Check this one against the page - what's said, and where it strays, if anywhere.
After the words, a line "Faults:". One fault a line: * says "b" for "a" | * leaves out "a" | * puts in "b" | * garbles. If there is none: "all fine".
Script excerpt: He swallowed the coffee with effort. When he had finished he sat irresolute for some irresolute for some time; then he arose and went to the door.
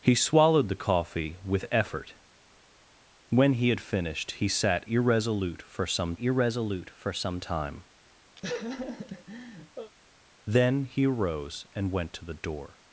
He swallowed the coffee with effort. When he had finished he sat irresolute for some irresolute for some time; then he arose and went to the door.
Faults:
all fine